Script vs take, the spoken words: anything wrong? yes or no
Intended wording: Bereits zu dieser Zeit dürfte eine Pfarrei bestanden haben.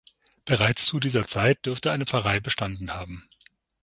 no